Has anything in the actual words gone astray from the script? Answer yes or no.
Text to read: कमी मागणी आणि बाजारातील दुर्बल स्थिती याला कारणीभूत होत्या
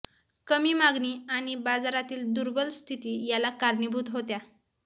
no